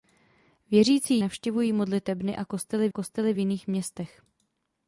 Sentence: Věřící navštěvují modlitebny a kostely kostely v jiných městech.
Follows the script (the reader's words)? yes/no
yes